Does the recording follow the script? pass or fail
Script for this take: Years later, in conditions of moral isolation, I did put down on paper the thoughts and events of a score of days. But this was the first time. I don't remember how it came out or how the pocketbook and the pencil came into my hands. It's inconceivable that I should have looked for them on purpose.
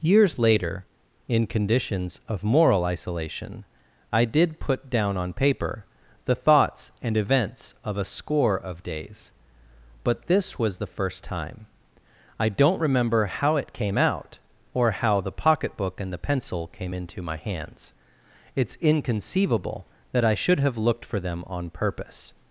pass